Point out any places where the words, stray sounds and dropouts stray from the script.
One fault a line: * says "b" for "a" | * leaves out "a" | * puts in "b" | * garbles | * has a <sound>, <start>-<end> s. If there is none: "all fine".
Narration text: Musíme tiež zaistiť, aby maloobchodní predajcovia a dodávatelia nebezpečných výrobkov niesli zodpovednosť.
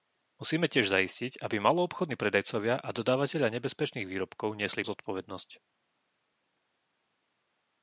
all fine